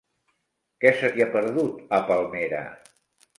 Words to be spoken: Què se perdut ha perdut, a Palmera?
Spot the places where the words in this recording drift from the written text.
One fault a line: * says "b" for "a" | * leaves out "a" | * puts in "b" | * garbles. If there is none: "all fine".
* says "t'hi" for "perdut"